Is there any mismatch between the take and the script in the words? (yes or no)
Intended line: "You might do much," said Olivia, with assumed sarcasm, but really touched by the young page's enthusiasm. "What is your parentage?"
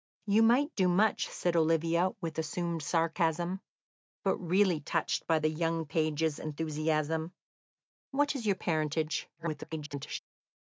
yes